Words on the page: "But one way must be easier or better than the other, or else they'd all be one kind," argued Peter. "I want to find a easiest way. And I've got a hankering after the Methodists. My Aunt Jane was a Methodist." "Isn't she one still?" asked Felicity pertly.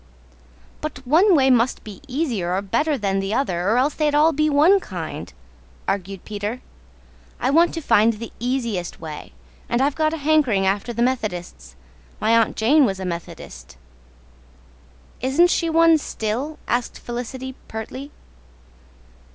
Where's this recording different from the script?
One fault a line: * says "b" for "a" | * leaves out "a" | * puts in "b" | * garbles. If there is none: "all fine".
* says "the" for "a"